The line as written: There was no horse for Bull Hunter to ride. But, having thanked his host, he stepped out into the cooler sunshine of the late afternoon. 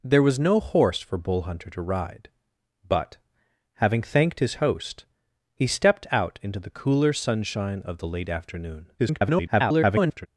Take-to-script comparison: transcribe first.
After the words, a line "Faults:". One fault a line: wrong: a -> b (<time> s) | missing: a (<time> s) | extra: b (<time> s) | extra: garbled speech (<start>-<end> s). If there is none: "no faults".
There was no horse for Bull Hunter to ride. But, having thanked his host, he stepped out into the cooler sunshine of the late afternoon. [garbled]
Faults:
extra: garbled speech (9.0-10.3 s)